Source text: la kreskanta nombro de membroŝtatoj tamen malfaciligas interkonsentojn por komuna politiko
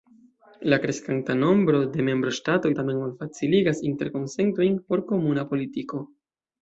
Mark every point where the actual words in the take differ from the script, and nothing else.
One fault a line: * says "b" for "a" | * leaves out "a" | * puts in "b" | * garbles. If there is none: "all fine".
all fine